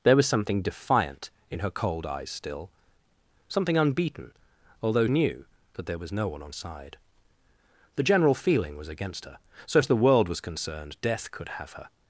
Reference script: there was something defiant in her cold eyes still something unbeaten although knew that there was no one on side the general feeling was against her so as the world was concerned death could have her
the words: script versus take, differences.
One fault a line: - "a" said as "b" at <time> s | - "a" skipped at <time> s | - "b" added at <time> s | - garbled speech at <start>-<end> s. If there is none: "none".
none